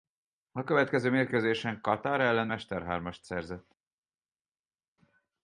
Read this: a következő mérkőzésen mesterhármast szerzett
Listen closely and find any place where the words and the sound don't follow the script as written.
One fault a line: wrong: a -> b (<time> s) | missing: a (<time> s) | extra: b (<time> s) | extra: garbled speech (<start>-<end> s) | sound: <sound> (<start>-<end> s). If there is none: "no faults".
extra: katar ellen (1.8 s)